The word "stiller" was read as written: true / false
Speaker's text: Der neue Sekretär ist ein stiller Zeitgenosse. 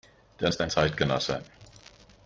false